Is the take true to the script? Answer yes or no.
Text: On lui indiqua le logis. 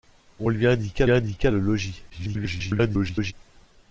no